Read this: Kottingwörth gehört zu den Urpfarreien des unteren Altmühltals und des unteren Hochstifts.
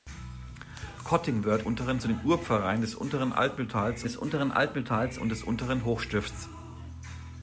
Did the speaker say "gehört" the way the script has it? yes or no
no